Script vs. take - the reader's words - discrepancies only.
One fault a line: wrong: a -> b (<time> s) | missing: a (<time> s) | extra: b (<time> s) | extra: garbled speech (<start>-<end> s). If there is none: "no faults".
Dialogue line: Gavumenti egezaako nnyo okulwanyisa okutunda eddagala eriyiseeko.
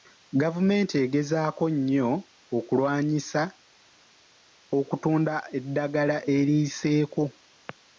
no faults